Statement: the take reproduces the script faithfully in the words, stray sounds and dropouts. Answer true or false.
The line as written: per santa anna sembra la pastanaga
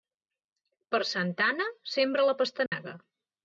false